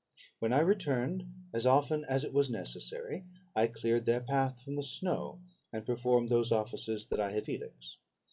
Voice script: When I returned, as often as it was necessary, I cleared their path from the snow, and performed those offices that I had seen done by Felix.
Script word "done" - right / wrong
wrong